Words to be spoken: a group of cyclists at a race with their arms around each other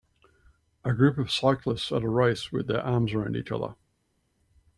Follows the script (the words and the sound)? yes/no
yes